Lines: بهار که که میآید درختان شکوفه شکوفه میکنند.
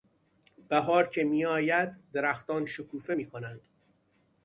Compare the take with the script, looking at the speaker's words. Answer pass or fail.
fail